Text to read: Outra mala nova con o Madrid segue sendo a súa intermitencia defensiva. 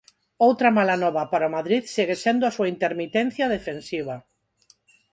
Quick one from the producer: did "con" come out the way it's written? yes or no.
no